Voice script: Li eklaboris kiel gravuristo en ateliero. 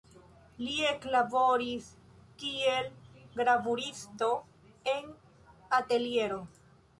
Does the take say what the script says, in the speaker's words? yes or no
yes